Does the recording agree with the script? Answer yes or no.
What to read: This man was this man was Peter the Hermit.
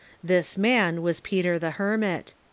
no